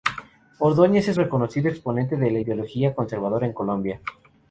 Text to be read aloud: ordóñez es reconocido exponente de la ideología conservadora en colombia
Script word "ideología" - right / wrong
right